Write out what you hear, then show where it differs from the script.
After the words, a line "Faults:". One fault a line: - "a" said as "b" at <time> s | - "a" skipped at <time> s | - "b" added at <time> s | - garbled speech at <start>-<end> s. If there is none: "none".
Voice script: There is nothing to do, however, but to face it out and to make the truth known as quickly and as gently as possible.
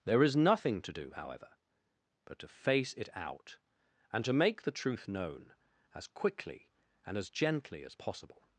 There is nothing to do, however, but to face it out and to make the truth known as quickly and as gently as possible.
Faults:
none